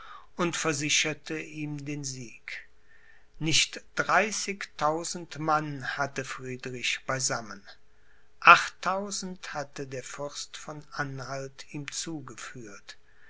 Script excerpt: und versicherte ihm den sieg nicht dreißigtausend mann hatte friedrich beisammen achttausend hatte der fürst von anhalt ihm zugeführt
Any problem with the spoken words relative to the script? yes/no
no